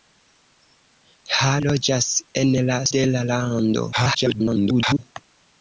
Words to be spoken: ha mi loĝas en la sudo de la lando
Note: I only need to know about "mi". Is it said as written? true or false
false